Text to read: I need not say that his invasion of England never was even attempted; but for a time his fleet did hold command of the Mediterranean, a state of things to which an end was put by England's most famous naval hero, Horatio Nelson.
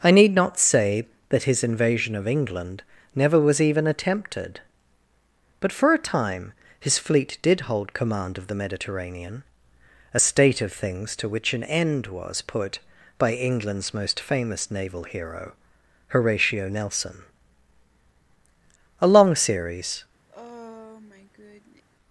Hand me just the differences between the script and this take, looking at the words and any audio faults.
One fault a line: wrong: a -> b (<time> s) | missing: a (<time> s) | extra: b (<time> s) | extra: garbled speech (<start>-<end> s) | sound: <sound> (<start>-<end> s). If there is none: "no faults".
extra: A long series (19.0 s)
sound: sigh (20.3-21.8 s)